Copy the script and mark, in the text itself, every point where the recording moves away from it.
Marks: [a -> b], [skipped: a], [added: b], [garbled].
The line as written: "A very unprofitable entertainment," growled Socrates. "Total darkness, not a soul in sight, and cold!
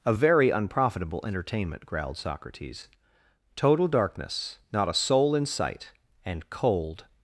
"A very unprofitable entertainment," growled Socrates. "Total darkness, not a soul in sight, and cold!